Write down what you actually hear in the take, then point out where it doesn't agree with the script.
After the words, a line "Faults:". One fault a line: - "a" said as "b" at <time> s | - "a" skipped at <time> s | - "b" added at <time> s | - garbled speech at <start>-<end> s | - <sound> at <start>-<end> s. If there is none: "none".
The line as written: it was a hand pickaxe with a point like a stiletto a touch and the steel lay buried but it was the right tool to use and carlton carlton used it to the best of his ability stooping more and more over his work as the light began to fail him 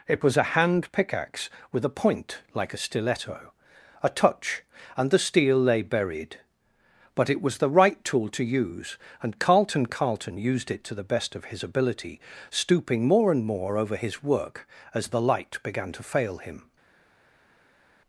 it was a hand pickaxe with a point like a stiletto a touch and the steel lay buried but it was the right tool to use and carlton carlton used it to the best of his ability stooping more and more over his work as the light began to fail him
Faults:
none